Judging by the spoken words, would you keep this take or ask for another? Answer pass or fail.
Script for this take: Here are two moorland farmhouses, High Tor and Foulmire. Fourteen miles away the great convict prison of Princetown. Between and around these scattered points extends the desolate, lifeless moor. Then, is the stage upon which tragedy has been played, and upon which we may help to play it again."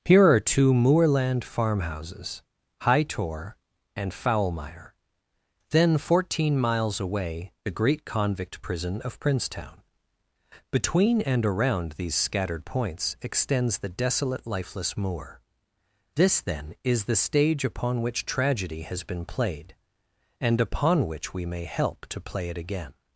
fail